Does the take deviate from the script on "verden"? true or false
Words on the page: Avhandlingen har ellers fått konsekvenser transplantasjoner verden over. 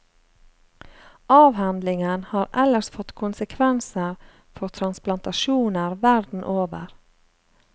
false